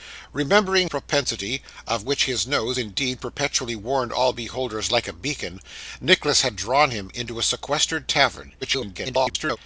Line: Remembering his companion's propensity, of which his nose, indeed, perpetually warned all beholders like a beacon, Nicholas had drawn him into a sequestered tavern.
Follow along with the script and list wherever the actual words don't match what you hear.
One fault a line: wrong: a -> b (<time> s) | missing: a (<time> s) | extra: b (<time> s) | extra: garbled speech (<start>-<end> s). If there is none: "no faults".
missing: his companion's (0.9 s)
extra: garbled speech (8.6-9.6 s)